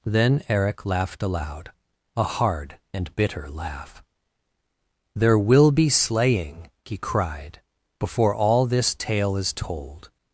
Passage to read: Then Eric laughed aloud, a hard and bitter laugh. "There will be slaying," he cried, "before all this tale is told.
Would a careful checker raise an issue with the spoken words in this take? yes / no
no